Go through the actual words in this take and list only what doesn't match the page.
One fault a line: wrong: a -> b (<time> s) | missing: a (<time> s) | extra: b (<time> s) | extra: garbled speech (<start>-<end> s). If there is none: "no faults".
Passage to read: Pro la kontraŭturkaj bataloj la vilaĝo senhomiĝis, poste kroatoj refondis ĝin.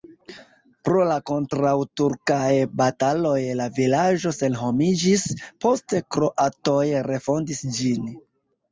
no faults